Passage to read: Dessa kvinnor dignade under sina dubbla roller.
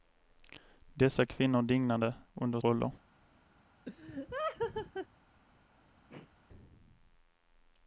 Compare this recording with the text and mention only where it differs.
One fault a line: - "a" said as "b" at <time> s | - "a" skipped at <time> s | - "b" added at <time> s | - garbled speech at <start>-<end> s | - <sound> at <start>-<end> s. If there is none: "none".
- "sina dubbla" skipped at 2.6 s
- laugh at 3.8-5.1 s
- throat clearing at 6.1-6.3 s